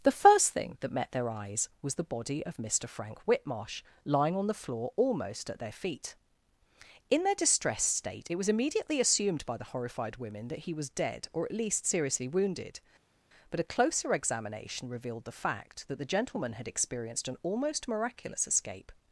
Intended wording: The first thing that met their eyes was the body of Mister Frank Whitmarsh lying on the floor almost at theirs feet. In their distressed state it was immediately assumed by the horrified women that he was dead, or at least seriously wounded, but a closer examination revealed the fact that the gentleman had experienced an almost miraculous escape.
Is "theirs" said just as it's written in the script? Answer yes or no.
no